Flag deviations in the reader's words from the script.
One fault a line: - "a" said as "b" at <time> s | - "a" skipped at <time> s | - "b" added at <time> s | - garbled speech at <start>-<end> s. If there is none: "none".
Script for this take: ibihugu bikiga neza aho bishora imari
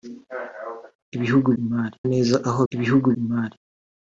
- "bikiga" said as "imari" at 1.6 s
- "bishora" said as "ibihugu" at 2.7 s